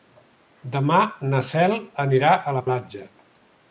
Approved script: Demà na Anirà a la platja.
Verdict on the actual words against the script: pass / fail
fail